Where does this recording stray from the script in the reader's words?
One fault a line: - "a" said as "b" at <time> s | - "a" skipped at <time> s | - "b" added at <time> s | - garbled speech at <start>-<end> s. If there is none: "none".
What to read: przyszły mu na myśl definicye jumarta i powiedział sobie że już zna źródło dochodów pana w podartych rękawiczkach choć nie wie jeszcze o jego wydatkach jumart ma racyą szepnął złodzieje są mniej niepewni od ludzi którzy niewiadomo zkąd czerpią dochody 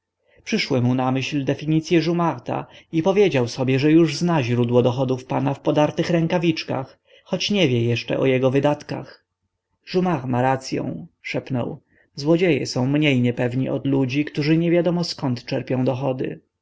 none